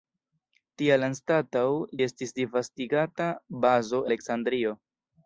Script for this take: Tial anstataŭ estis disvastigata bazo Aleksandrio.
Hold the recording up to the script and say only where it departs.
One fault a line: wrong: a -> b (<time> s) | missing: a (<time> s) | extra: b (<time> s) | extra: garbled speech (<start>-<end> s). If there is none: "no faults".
no faults